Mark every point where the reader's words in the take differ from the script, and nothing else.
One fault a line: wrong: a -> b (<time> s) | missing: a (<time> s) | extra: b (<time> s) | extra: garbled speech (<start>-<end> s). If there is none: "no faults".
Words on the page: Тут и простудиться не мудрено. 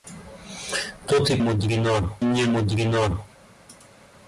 wrong: простудиться -> мудрено (1.4 s)